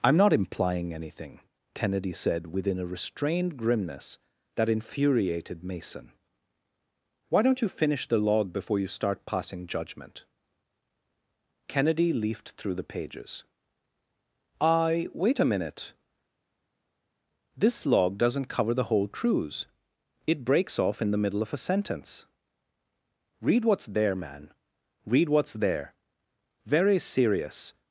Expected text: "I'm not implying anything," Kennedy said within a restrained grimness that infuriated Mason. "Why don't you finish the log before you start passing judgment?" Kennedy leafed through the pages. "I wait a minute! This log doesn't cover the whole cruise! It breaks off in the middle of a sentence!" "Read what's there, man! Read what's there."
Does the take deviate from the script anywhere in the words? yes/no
yes